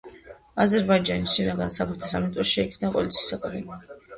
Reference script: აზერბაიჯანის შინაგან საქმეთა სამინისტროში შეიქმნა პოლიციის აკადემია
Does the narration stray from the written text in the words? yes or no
no